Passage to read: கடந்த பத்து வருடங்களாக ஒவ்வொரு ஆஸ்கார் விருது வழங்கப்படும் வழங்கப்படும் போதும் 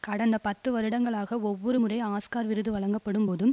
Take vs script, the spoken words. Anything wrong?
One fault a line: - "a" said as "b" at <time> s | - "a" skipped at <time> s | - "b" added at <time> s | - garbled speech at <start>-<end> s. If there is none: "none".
- "முறை" added at 1.8 s
- "வழங்கப்படும்" skipped at 3.2 s